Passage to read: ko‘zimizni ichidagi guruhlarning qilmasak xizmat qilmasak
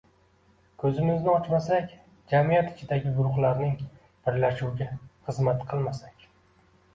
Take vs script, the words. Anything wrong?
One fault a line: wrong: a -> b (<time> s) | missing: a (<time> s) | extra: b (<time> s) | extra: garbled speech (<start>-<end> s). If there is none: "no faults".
extra: ochmasak jamiyat (1.3 s)
wrong: qilmasak -> birlashuviga (4.3 s)